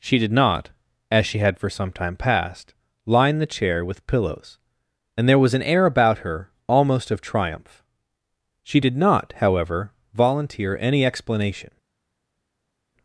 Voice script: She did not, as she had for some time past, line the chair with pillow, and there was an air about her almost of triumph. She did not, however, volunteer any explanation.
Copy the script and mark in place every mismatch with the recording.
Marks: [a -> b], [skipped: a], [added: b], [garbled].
She did not, as she had for some time past, line the chair with [pillow, -> pillows] and there was an air about her almost of triumph. She did not, however, volunteer any explanation.